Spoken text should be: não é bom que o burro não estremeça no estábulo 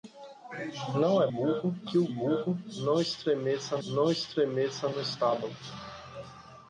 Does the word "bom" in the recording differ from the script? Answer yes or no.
yes